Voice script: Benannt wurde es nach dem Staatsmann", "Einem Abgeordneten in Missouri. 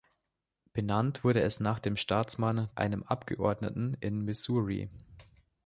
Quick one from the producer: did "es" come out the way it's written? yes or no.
yes